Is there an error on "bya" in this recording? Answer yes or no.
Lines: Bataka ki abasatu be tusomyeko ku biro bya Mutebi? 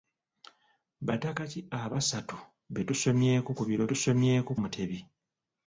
yes